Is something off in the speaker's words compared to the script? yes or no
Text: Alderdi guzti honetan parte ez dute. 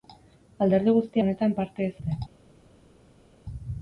no